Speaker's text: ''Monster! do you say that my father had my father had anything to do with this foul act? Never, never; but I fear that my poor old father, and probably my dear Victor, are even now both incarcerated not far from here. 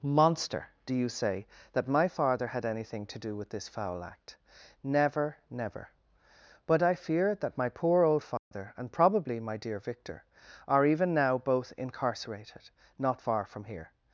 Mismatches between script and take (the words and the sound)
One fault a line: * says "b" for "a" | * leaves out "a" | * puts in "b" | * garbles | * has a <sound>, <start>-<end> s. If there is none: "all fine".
* leaves out "my father had"
* has a dropout, 8.4-8.5 s